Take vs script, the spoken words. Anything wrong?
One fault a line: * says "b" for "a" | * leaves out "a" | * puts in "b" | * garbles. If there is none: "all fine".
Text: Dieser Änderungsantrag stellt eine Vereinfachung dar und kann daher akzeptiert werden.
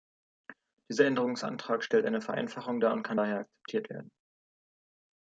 all fine